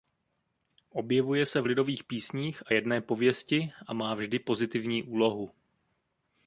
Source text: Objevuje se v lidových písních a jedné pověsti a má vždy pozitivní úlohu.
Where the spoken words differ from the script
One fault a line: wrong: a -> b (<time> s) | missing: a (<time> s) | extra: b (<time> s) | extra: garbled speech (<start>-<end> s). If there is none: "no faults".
no faults